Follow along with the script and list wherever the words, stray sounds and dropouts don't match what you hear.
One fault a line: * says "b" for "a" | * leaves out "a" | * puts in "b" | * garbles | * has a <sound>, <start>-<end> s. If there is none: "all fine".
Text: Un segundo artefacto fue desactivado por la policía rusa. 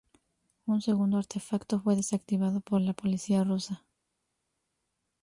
all fine